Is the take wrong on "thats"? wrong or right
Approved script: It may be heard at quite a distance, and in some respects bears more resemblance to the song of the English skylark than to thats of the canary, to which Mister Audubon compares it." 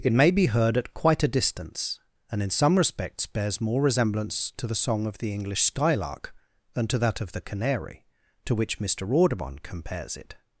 wrong